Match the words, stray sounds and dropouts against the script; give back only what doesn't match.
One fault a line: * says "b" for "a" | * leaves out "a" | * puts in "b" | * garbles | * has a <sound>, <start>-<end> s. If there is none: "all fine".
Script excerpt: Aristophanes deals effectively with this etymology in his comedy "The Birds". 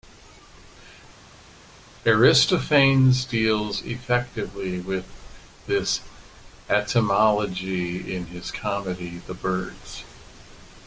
all fine